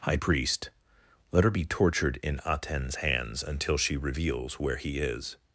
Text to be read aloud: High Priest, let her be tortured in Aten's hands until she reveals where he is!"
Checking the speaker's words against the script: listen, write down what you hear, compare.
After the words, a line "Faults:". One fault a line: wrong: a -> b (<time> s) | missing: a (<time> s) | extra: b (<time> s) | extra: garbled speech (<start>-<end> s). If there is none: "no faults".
High Priest, let her be tortured in Aten's hands until she reveals where he is!"
Faults:
no faults